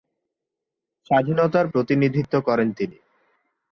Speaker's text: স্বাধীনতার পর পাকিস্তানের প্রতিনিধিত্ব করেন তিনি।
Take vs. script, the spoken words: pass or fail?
fail